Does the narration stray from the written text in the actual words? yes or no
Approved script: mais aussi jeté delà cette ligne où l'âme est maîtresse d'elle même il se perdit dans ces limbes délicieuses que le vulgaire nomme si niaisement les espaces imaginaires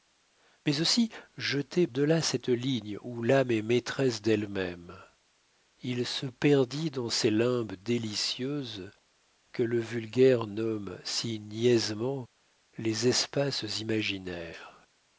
no